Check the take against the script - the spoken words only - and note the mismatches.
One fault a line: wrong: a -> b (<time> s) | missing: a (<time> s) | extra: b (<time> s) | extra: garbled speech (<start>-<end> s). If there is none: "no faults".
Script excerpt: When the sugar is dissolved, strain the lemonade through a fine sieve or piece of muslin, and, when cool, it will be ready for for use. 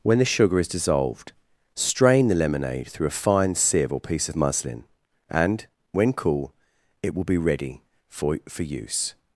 no faults